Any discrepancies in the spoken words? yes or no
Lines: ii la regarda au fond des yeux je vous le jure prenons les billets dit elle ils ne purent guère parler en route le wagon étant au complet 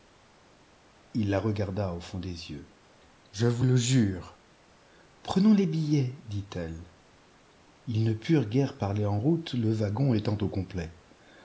no